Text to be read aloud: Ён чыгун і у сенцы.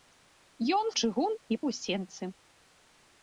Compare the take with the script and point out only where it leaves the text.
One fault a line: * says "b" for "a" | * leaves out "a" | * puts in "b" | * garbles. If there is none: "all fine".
all fine